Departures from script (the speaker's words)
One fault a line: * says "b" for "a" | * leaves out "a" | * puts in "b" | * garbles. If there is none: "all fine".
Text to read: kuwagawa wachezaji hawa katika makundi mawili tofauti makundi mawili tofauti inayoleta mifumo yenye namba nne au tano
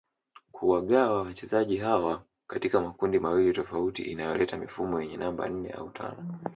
* leaves out "makundi mawili tofauti"